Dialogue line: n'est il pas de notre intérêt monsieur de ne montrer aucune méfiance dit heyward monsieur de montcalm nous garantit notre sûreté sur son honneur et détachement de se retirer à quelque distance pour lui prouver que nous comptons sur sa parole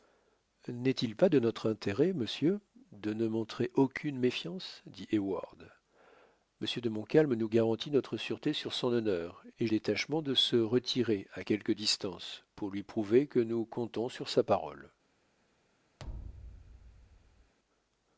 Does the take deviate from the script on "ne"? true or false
false